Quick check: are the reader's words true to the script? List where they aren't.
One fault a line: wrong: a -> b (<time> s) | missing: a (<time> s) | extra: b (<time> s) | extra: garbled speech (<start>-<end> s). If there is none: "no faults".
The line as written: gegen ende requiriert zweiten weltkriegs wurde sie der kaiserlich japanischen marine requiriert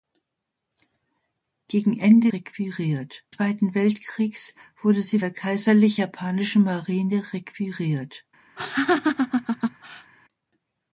no faults